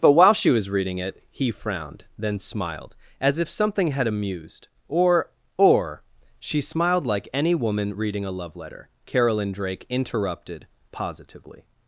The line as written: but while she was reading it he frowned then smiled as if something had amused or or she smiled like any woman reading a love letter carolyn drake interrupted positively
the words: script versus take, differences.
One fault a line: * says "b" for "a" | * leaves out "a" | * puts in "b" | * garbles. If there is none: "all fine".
all fine